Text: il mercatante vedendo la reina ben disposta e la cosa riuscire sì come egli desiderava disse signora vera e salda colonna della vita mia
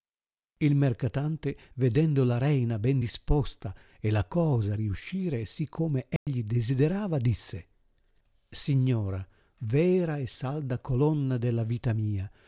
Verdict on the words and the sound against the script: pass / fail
fail